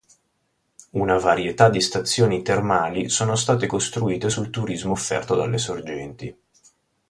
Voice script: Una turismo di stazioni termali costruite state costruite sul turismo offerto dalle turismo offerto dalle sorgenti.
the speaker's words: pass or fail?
fail